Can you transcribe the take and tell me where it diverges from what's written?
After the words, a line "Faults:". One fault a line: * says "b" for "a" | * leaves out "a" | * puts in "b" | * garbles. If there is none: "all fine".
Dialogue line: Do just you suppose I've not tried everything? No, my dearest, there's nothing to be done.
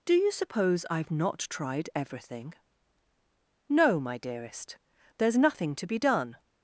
Do you suppose I've not tried everything? No, my dearest, there's nothing to be done.
Faults:
* leaves out "just"